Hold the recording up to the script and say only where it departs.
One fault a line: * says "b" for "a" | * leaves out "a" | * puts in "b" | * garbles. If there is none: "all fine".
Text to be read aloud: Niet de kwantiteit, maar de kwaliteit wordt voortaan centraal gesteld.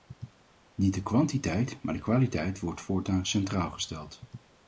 all fine